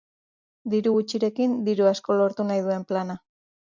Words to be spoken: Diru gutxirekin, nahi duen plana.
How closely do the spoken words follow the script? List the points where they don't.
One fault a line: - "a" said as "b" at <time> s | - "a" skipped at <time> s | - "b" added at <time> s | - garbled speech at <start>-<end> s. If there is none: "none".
- "diru asko lortu" added at 1.7 s